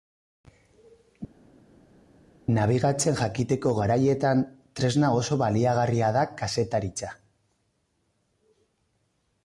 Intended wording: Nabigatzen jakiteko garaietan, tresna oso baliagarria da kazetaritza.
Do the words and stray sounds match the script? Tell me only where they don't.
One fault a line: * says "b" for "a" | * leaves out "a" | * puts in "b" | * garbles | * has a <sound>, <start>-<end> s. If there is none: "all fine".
all fine